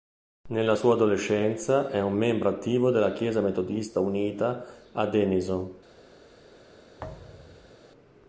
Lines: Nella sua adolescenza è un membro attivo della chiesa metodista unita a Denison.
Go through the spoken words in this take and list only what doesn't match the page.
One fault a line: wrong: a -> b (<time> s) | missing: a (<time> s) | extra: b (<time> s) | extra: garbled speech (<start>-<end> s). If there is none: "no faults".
no faults